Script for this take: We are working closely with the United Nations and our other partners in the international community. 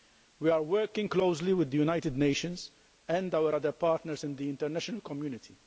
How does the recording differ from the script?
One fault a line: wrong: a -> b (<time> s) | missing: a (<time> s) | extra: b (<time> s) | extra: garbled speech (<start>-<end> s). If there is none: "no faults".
no faults